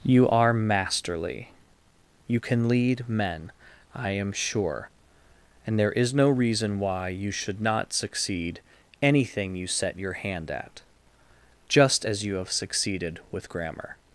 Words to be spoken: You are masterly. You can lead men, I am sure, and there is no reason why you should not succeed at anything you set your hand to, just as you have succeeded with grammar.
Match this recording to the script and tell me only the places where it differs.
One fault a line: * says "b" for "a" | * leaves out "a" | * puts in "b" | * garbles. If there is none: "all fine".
* leaves out "at"
* says "at" for "to"